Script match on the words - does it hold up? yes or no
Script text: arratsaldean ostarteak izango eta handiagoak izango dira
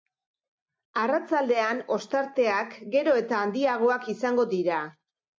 no